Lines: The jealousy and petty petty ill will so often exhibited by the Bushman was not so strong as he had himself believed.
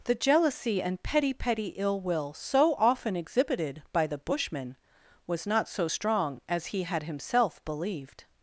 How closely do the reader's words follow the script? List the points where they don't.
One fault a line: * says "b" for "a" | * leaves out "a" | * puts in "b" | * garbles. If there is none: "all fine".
all fine